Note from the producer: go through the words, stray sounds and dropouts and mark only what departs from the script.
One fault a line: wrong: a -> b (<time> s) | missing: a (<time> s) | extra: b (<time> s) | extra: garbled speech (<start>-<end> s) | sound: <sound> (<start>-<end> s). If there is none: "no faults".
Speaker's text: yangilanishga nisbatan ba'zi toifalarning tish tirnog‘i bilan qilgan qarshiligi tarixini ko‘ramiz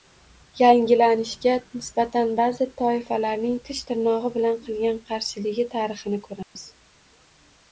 sound: dropout (6.4-6.6 s)